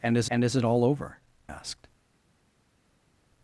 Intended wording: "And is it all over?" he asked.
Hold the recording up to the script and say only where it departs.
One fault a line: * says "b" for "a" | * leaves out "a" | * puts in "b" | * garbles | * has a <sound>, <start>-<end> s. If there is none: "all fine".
* puts in "and is"
* leaves out "he"